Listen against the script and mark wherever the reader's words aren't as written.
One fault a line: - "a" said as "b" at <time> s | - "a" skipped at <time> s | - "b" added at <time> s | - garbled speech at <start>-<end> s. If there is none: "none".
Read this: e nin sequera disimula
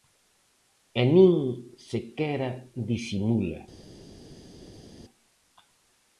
none